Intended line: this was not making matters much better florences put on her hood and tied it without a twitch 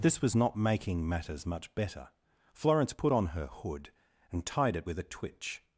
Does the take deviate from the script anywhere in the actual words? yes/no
yes